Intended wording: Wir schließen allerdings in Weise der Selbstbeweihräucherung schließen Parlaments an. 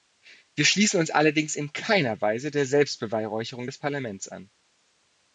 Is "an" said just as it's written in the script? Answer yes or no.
yes